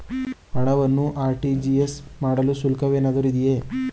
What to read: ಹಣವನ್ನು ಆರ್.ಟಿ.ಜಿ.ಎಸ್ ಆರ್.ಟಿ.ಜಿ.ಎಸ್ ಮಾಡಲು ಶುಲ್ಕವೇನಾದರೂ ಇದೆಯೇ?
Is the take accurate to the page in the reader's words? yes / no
no